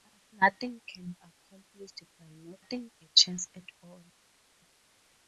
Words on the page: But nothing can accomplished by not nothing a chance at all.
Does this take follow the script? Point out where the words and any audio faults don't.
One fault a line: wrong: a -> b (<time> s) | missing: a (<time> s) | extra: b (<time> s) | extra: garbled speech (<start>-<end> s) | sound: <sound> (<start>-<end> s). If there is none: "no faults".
no faults